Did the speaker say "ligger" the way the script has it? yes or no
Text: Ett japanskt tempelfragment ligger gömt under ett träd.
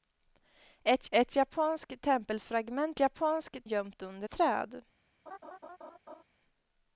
no